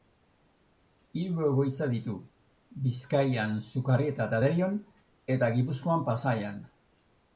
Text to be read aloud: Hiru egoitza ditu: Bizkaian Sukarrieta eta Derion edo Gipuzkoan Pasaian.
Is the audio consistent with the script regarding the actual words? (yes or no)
no